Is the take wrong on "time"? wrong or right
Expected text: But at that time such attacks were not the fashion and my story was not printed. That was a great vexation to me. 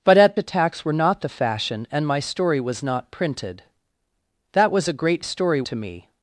wrong